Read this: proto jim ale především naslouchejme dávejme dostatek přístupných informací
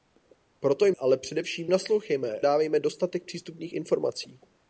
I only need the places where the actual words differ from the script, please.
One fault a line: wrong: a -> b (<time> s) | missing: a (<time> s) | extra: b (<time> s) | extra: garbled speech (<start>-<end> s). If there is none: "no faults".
no faults